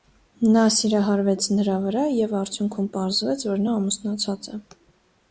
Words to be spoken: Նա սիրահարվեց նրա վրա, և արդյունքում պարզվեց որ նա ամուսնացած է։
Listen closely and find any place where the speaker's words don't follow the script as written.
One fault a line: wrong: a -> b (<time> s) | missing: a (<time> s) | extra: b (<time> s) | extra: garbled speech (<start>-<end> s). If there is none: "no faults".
no faults